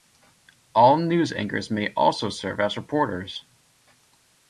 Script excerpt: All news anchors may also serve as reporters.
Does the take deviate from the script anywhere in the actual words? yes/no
no